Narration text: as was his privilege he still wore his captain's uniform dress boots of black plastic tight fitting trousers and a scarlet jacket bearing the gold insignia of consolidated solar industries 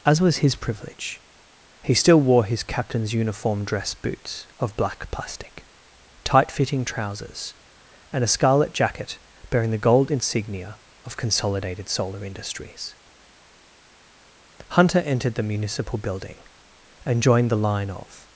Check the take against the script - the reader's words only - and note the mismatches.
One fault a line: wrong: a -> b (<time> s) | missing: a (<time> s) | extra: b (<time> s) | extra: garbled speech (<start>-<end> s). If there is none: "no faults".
extra: hunter entered the municipal building and joined the line of (14.7 s)